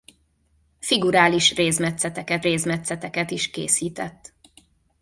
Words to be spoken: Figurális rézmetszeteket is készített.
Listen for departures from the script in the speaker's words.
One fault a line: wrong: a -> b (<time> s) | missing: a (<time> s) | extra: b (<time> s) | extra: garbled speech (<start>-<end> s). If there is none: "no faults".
extra: rézmetszeteket (2.4 s)